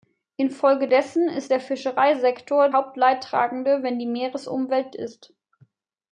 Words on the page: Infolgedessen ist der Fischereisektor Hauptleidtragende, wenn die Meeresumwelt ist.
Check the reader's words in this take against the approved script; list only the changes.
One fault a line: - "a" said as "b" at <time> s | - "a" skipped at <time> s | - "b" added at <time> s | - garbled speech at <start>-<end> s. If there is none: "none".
none